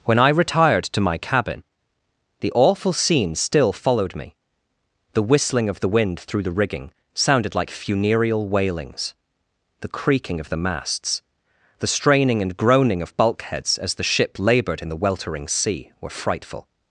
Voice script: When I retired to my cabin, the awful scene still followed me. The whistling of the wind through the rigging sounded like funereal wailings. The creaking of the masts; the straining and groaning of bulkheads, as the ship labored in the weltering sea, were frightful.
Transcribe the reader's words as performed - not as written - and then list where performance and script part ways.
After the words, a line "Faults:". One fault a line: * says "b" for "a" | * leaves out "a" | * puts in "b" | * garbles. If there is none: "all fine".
When I retired to my cabin, the awful scene still followed me. The whistling of the wind through the rigging sounded like funereal wailings. The creaking of the masts; the straining and groaning of bulkheads, as the ship labored in the weltering sea, were frightful.
Faults:
all fine